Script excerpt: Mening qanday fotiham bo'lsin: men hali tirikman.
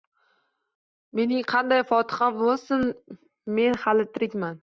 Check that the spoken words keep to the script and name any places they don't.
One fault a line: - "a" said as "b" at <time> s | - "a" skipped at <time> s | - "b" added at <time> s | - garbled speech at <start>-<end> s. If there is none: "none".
none